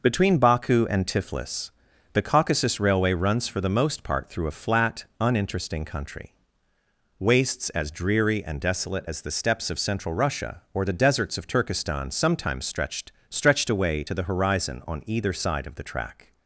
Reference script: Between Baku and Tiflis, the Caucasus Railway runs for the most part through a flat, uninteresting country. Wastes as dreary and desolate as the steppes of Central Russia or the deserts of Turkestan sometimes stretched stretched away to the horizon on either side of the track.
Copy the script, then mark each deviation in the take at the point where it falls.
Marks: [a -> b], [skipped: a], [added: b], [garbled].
Between Baku and Tiflis, the Caucasus Railway runs for the most part through a flat, uninteresting country. Wastes as dreary and desolate as the steppes of Central Russia or the deserts of Turkestan sometimes stretched stretched away to the horizon on either side of the track.